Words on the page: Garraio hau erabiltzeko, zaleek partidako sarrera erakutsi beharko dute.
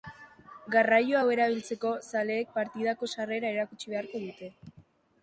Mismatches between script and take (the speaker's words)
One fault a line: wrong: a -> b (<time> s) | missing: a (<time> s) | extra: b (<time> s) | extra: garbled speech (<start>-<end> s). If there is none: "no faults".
no faults